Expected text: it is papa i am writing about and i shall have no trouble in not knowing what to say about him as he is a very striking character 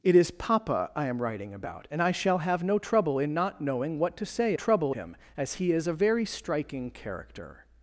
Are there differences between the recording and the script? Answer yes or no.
yes